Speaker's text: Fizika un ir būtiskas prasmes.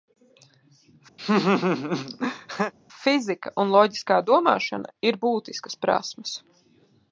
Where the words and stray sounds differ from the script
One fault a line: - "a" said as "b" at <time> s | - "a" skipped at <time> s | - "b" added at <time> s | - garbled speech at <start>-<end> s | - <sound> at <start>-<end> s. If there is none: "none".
- laugh at 1.2-2.7 s
- "loģiskā domāšana" added at 3.8 s